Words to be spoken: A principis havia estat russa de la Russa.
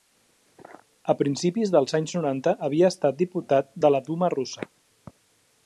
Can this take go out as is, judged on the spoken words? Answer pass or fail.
fail